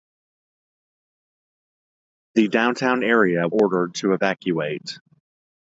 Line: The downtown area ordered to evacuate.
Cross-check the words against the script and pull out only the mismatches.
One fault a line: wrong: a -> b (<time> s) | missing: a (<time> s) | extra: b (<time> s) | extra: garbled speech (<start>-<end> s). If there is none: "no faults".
no faults